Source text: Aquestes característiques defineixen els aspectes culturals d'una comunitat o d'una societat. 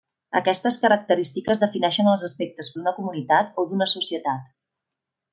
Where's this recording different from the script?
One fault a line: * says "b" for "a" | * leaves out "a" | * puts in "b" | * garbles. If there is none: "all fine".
* leaves out "culturals"